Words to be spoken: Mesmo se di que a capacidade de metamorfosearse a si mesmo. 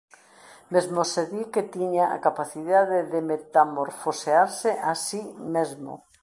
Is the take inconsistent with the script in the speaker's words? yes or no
yes